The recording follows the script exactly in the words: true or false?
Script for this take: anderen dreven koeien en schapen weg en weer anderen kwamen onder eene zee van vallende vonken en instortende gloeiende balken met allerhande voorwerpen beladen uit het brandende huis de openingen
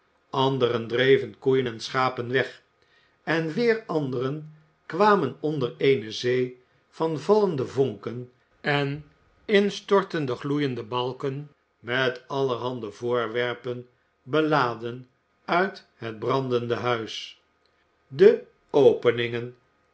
true